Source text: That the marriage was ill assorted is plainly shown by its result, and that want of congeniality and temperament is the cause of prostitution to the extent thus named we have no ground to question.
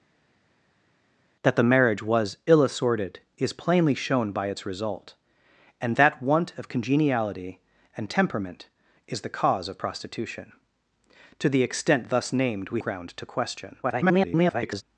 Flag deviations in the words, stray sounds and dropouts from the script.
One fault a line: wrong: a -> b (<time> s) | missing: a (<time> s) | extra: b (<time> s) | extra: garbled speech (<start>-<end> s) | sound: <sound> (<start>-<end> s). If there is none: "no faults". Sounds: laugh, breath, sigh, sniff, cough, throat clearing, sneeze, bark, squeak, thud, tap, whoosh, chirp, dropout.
missing: have no (12.8 s)
extra: garbled speech (13.8-14.8 s)